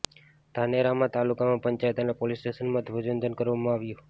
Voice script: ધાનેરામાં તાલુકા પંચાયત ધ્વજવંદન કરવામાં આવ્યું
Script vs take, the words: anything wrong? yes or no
yes